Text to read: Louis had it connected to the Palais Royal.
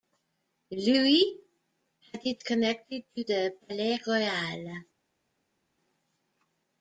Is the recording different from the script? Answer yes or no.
no